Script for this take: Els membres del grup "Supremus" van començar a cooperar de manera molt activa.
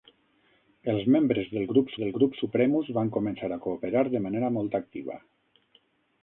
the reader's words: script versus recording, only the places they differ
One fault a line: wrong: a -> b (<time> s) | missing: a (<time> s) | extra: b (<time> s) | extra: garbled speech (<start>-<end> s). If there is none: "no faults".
extra: del grup (2.0 s)